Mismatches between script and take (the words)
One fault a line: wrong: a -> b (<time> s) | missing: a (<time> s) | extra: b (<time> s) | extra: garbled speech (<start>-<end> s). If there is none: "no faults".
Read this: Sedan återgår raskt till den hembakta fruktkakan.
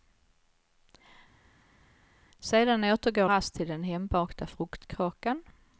no faults